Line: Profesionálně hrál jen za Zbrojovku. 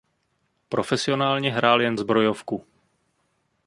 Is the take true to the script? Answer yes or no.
no